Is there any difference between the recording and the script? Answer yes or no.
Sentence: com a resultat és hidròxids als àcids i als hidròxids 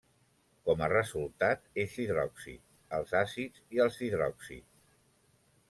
no